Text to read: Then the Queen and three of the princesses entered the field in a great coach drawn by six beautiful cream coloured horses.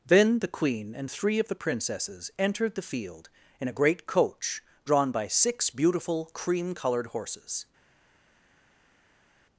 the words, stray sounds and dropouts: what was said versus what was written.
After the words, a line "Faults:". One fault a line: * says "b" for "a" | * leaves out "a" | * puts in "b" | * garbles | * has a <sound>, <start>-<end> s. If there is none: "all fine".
Then the Queen and three of the princesses entered the field in a great coach drawn by six beautiful cream coloured horses.
Faults:
all fine